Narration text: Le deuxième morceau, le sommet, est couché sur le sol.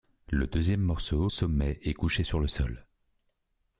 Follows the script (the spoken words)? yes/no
no